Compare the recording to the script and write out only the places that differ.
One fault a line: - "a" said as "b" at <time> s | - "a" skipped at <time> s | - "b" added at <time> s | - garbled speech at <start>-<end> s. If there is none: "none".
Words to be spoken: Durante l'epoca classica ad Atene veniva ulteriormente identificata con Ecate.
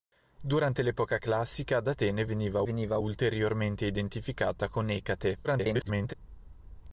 - "veniva" added at 2.6 s
- garbled speech at 5.4-6.1 s